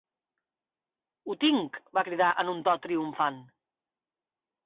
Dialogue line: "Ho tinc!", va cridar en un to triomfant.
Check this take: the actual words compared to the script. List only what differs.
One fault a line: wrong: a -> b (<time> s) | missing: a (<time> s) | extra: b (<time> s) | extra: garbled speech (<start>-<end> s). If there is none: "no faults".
no faults